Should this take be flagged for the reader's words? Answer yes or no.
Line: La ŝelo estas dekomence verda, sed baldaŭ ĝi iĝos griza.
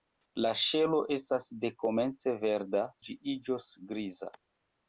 yes